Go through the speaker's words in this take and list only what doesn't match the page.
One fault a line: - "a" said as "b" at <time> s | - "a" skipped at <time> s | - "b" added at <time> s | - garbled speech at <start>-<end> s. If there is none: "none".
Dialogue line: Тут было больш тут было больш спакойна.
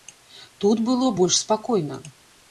- "тут было больш" skipped at 1.4 s